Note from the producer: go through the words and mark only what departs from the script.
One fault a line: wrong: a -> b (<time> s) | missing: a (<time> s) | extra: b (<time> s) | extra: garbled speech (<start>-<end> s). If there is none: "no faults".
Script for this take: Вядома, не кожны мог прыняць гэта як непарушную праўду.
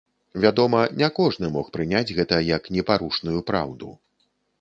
no faults